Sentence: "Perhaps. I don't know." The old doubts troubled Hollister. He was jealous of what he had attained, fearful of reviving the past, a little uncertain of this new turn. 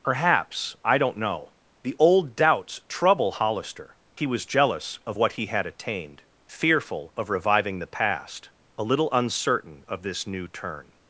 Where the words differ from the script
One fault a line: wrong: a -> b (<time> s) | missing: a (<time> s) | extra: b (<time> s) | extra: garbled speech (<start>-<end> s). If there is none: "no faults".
wrong: troubled -> trouble (2.9 s)